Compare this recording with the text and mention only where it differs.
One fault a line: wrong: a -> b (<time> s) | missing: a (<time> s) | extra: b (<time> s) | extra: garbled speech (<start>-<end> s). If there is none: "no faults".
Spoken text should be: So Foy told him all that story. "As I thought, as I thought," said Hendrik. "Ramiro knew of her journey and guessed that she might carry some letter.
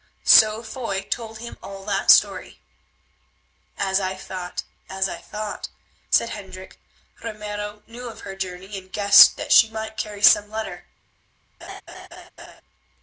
no faults